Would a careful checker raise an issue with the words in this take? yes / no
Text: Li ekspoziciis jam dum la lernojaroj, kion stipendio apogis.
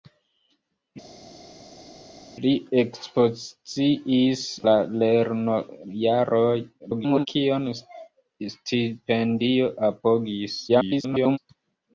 yes